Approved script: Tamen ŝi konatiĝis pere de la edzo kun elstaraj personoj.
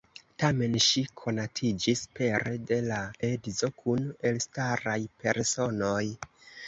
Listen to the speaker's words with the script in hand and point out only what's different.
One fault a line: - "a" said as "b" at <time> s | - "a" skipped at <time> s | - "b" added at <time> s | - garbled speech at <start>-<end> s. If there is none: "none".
none